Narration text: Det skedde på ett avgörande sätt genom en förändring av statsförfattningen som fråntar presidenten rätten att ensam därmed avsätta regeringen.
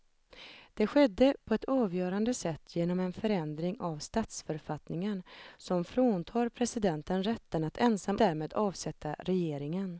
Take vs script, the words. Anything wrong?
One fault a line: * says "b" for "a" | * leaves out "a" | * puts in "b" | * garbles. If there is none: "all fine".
all fine